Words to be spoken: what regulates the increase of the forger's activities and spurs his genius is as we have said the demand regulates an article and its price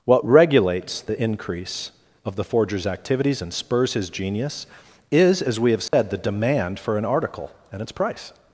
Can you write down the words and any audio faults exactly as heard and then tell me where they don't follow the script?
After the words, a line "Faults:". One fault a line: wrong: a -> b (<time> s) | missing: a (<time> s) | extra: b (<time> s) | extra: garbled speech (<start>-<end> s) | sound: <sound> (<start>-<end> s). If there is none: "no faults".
what regulates the increase of the forger's activities and spurs his genius is as we have said the demand for an article and its price
Faults:
sound: dropout (5.9-5.9 s)
wrong: regulates -> for (6.8 s)